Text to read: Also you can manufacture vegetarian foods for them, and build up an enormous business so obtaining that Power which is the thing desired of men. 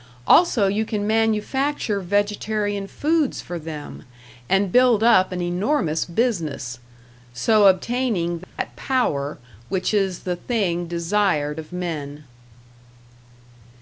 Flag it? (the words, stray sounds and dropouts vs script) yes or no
yes